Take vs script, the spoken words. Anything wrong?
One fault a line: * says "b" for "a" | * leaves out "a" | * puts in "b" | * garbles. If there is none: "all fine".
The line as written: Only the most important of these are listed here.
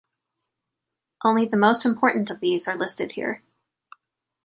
all fine